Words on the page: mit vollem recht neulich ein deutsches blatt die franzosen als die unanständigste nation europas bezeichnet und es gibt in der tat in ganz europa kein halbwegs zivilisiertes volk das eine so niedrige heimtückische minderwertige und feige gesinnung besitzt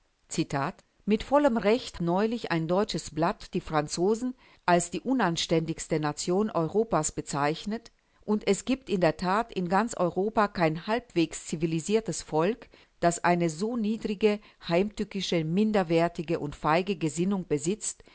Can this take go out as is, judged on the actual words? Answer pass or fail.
pass